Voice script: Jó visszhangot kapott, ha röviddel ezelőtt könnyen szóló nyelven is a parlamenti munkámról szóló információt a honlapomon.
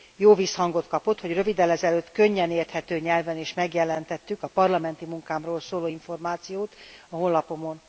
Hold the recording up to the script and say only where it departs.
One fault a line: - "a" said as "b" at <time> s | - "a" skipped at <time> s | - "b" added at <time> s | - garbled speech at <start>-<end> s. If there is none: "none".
- "ha" said as "hogy" at 1.2 s
- "szóló" said as "érthető" at 2.5 s
- "megjelentettük" added at 3.5 s